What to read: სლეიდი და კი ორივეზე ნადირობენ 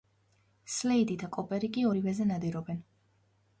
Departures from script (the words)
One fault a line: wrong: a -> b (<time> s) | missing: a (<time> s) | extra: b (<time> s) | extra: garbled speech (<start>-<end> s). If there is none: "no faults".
extra: კოპერი (1.4 s)